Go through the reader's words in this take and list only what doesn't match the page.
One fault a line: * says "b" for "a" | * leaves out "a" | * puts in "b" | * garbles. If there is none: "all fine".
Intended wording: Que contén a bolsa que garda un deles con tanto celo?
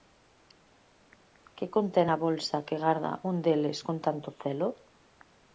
all fine